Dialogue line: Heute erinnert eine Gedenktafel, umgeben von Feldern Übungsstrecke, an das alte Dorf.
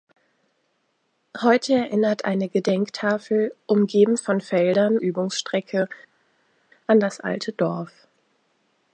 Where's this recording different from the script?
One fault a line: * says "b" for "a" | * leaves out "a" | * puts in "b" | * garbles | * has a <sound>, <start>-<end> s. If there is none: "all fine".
all fine